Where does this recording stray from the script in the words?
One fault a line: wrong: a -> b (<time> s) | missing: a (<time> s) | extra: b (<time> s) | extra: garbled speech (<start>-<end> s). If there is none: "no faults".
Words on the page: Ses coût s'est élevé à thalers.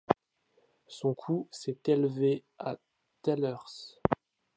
wrong: Ses -> Son (0.9 s)